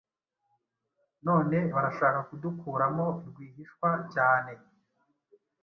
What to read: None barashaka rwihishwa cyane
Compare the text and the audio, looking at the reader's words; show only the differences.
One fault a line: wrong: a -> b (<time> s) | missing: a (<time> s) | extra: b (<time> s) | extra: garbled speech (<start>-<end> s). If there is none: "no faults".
extra: kudukuramo (2.3 s)